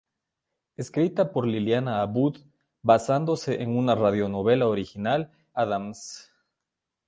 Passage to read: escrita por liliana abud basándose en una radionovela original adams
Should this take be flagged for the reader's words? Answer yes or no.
no